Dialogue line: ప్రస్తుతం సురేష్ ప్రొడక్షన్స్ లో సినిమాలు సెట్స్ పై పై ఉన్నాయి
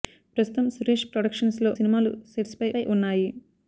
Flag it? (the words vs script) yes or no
no